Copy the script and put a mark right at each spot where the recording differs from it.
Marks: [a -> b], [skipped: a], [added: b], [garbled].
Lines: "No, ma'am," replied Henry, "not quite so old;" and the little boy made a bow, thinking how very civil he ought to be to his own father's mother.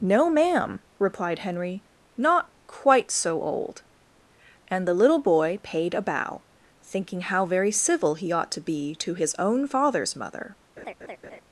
"No, ma'am," replied Henry, "not quite so old;" and the little boy [made -> paid] a bow, thinking how very civil he ought to be to his own father's mother.